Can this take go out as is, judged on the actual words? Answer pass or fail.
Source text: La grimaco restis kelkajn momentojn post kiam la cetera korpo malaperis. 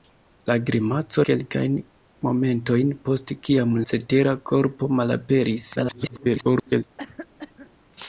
fail